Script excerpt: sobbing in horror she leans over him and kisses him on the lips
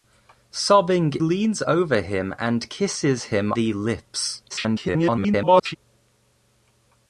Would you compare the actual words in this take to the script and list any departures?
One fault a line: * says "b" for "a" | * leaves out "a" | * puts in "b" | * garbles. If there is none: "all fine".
* leaves out "in horror she"
* leaves out "on"
* garbles